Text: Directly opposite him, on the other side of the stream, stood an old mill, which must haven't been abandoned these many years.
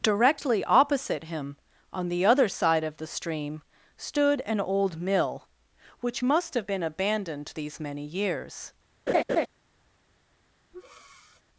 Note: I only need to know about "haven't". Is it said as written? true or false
false